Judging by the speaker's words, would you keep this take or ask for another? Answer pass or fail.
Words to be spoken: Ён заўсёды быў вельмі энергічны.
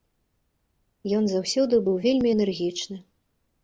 pass